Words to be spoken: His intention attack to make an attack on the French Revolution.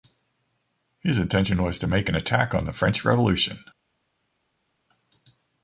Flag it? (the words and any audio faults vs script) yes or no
yes